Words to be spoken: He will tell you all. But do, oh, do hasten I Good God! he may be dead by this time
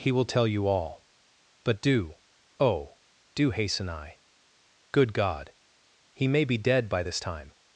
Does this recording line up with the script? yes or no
yes